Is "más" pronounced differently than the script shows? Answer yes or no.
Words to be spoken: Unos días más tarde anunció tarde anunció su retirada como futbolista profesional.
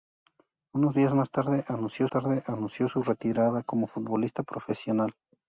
no